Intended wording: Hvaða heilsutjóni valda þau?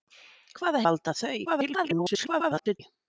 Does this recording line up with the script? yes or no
no